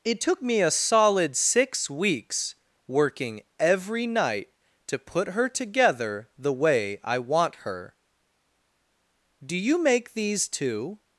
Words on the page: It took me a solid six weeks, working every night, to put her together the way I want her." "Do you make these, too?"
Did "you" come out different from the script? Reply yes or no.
no